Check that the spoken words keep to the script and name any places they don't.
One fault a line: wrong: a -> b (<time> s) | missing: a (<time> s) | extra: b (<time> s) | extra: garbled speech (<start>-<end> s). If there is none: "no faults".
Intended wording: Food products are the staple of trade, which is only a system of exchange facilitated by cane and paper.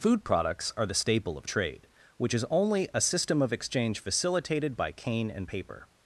no faults